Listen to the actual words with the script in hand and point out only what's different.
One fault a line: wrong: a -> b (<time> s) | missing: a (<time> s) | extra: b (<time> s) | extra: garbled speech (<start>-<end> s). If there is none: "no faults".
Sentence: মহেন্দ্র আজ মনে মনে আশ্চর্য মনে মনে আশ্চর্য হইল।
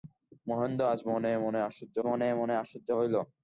no faults